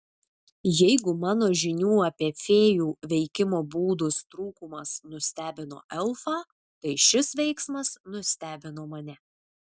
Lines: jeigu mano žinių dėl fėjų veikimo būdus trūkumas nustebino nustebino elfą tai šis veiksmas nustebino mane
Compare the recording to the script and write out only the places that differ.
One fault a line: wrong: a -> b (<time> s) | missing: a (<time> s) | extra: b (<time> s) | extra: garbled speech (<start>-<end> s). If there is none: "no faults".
wrong: dėl -> apie (2.0 s)
missing: nustebino (5.8 s)